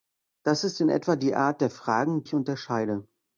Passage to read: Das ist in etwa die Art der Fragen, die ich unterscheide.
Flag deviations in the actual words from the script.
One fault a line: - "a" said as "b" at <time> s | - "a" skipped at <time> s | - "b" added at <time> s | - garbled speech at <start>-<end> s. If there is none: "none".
- "die" skipped at 2.2 s